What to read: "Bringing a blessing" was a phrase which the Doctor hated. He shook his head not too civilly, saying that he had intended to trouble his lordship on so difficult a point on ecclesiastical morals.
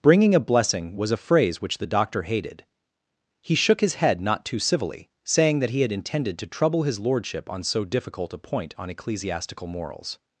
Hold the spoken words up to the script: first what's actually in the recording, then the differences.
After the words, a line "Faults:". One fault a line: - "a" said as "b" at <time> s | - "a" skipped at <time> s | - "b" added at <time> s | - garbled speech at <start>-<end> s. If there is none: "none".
"Bringing a blessing" was a phrase which the Doctor hated. He shook his head not too civilly, saying that he had intended to trouble his lordship on so difficult a point on ecclesiastical morals.
Faults:
none